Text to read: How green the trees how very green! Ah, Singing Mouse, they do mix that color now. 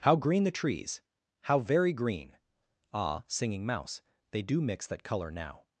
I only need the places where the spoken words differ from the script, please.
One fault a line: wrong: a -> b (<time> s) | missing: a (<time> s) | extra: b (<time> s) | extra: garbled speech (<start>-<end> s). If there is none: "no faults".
no faults